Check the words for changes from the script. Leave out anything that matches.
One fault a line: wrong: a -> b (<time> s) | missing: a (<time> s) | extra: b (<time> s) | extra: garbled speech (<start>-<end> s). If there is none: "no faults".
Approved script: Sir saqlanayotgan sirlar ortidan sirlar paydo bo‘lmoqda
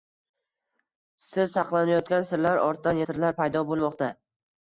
no faults